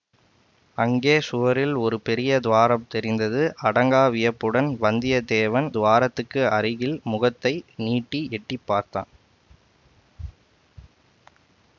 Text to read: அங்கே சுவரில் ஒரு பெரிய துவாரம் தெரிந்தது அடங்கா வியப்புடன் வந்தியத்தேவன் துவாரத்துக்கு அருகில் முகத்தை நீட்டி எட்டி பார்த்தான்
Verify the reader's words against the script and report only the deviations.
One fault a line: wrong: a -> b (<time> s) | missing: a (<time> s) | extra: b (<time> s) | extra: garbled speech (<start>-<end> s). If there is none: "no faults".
no faults